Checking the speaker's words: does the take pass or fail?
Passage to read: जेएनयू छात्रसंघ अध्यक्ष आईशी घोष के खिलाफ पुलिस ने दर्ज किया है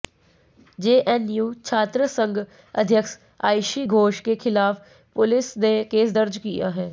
fail